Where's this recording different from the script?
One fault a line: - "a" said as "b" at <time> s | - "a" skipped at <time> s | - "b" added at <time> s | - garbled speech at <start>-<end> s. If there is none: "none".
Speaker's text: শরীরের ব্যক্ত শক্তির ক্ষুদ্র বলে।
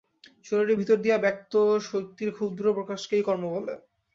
- "ভিতর দিয়া" added at 0.8 s
- "প্রকাশকেই কর্ম" added at 2.7 s